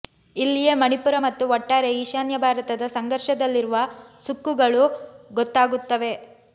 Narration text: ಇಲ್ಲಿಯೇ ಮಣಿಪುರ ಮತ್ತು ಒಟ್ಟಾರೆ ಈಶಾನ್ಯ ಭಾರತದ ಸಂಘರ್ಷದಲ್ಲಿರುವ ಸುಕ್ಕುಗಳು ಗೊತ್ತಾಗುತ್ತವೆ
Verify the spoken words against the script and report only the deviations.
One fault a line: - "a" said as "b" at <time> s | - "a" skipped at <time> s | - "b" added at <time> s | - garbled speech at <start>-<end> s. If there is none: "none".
none